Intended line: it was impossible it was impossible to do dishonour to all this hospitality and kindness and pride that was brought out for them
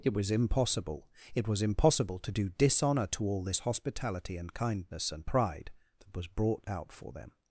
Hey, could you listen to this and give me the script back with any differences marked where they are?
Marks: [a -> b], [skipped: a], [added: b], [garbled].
it was impossible it was impossible to do dishonour to all this hospitality and kindness and pride that was brought out for them